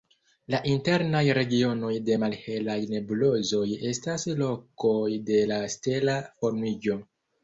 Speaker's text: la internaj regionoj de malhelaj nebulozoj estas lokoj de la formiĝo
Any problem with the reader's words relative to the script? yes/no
yes